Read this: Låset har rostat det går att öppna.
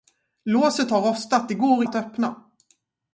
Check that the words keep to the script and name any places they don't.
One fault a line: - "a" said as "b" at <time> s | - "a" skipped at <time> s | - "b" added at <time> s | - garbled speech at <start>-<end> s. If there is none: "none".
none